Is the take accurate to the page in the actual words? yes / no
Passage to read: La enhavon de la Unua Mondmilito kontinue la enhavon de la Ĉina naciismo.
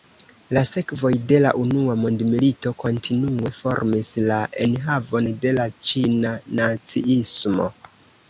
no